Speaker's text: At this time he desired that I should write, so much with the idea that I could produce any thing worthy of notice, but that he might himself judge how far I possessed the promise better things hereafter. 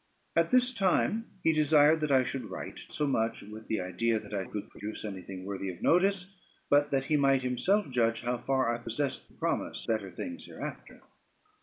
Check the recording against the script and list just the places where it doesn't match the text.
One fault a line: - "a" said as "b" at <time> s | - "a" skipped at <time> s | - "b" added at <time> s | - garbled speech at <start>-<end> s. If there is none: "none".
none